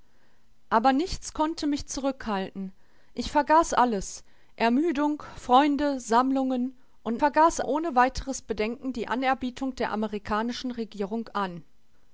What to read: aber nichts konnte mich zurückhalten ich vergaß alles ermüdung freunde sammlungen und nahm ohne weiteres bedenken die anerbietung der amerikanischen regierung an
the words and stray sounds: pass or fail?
fail